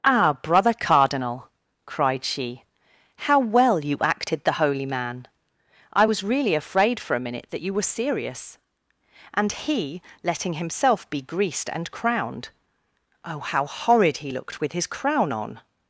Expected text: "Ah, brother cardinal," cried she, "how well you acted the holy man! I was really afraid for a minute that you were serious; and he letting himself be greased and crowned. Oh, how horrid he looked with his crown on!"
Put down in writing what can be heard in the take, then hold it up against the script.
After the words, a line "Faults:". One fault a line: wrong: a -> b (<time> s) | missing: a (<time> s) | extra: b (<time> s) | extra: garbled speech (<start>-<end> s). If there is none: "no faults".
"Ah, brother cardinal," cried she, "how well you acted the holy man! I was really afraid for a minute that you were serious; and he letting himself be greased and crowned. Oh, how horrid he looked with his crown on!"
Faults:
no faults